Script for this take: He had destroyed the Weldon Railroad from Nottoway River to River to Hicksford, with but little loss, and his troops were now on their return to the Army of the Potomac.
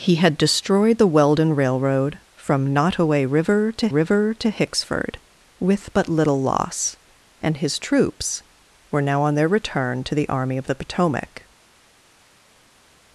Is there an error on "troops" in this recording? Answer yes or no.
no